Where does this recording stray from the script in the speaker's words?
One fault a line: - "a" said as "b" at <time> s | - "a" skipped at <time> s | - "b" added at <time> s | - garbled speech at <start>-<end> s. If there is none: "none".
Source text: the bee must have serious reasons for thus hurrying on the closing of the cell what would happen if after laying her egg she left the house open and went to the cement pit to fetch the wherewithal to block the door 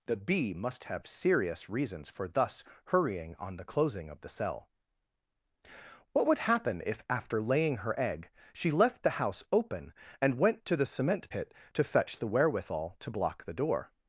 none